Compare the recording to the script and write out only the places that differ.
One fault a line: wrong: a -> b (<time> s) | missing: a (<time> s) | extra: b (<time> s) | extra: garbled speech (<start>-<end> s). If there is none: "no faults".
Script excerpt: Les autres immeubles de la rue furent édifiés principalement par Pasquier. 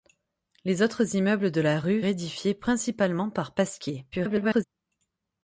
missing: furent (2.0 s)
extra: garbled speech (4.1-4.6 s)